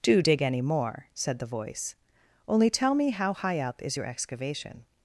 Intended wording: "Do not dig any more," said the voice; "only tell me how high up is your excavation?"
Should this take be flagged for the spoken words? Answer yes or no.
yes